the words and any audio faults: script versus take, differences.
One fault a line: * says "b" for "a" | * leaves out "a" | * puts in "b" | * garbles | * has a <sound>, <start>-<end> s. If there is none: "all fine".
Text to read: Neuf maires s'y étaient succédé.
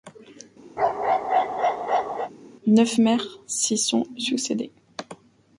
* has a bark, 0.8-2.3 s
* says "sont" for "étaient"